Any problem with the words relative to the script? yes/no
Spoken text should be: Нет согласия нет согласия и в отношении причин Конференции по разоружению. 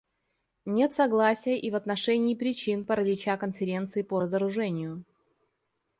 yes